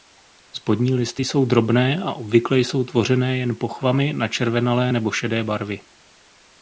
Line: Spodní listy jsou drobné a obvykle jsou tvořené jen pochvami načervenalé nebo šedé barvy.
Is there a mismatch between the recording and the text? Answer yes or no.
no